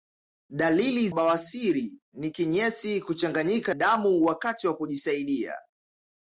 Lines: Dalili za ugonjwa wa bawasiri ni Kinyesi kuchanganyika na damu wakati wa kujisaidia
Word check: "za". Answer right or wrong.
wrong